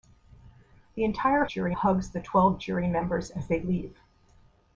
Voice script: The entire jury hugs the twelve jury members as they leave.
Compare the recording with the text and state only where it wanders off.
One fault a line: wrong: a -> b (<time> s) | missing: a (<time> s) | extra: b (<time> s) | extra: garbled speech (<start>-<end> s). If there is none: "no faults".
no faults